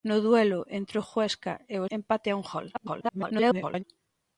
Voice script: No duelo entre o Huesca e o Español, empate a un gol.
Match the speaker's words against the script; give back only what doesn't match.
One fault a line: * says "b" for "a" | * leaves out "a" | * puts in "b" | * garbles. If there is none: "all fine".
* leaves out "Español"
* garbles